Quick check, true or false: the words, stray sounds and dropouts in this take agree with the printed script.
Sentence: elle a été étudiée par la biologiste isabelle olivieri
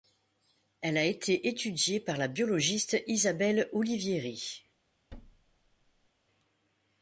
false